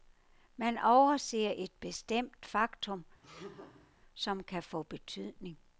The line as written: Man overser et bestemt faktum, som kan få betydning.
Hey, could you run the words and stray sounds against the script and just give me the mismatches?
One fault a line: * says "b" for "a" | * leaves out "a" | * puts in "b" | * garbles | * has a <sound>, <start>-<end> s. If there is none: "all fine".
* has a laugh, 3.2-3.9 s